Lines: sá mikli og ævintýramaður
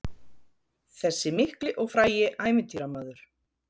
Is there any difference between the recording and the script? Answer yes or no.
yes